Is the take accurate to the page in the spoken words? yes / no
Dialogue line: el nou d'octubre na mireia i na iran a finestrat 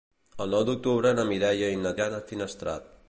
yes